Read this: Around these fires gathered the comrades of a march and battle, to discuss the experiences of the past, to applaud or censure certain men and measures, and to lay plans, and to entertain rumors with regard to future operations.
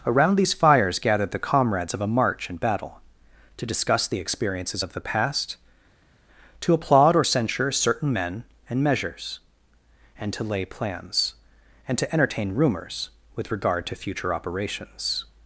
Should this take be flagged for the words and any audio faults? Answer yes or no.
no